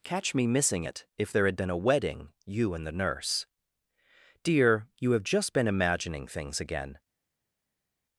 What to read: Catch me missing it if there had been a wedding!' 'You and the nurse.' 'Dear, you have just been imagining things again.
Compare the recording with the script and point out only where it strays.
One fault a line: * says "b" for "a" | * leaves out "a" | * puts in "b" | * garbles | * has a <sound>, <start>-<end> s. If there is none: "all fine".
all fine